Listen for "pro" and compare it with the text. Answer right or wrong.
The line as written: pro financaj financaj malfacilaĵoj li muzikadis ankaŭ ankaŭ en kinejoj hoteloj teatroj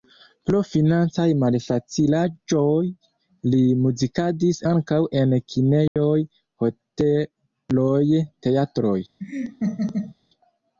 right